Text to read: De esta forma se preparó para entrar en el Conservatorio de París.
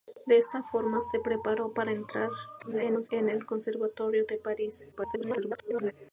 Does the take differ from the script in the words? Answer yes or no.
yes